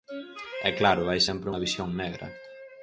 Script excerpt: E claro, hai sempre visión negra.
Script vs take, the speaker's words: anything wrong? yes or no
yes